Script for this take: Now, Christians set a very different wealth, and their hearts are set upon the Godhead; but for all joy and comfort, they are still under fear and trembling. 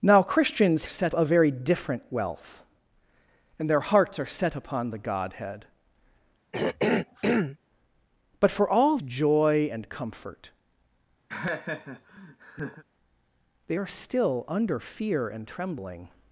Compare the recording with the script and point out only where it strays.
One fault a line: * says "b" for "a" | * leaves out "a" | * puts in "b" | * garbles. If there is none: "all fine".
all fine